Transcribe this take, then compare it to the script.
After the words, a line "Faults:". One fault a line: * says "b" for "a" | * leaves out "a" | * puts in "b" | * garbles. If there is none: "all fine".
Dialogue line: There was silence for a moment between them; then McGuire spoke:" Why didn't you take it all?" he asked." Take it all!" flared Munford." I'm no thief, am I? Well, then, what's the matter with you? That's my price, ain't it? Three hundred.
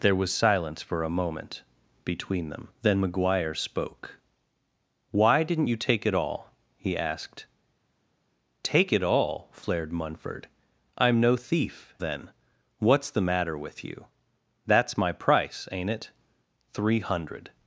There was silence for a moment between them; then McGuire spoke:" Why didn't you take it all?" he asked." Take it all!" flared Munford." I'm no thief, then, what's the matter with you? That's my price, ain't it? Three hundred.
Faults:
* leaves out "am I Well"